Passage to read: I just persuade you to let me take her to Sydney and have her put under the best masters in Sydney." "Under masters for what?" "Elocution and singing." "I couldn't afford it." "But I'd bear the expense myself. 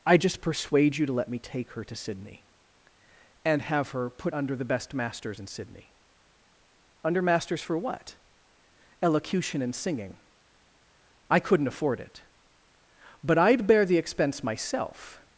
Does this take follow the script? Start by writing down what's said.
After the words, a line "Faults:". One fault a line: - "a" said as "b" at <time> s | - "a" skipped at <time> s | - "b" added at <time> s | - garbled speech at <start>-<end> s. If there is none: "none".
I just persuade you to let me take her to Sydney and have her put under the best masters in Sydney." "Under masters for what?" "Elocution and singing." "I couldn't afford it." "But I'd bear the expense myself.
Faults:
none